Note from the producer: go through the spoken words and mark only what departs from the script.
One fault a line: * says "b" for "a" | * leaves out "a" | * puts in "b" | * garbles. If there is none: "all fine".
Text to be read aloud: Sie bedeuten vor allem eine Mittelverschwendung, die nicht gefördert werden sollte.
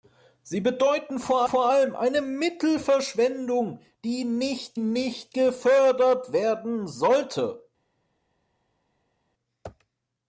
* puts in "vor"
* puts in "nicht"